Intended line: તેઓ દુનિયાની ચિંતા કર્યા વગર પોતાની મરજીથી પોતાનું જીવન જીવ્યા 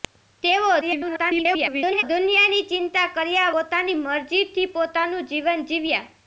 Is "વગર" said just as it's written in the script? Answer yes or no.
no